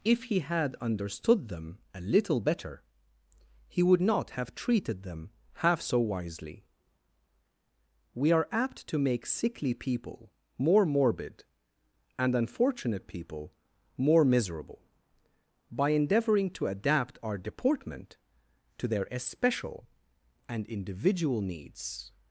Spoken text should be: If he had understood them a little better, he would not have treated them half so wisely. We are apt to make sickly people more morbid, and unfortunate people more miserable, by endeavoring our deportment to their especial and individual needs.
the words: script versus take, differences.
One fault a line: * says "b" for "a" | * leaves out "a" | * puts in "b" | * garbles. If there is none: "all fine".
* puts in "to adapt"